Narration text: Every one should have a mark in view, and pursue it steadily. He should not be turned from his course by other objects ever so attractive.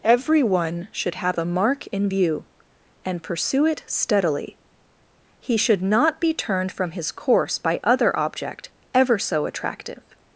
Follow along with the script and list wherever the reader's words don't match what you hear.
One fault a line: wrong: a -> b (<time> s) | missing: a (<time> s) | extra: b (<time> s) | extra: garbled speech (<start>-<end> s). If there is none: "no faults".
wrong: objects -> object (8.2 s)